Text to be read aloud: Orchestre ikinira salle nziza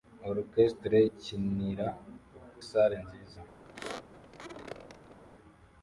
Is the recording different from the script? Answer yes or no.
no